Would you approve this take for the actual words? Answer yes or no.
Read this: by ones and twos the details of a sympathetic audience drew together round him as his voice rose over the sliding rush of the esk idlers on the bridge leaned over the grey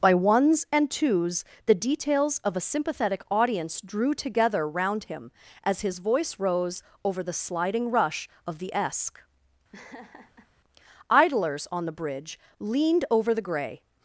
yes